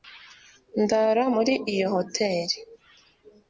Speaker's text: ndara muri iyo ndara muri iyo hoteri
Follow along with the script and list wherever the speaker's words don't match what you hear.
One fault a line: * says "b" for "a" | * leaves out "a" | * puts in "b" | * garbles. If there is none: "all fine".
* leaves out "ndara muri iyo"